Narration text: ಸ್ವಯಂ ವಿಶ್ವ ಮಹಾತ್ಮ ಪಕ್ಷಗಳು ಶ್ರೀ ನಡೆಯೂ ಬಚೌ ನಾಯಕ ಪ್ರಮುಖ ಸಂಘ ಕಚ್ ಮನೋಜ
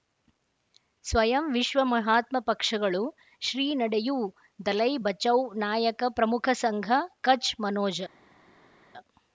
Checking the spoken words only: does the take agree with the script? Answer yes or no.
no